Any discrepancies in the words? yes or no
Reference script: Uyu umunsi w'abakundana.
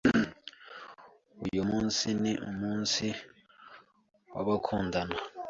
yes